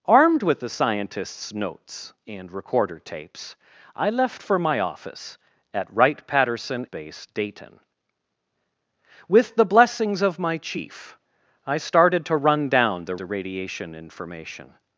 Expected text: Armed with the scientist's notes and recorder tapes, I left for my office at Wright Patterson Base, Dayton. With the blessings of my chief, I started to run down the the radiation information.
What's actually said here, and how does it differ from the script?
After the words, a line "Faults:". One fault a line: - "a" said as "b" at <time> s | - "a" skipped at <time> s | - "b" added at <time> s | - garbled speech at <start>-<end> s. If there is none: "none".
Armed with the scientist's notes and recorder tapes, I left for my office at Wright Patterson Base, Dayton. With the blessings of my chief, I started to run down the the radiation information.
Faults:
none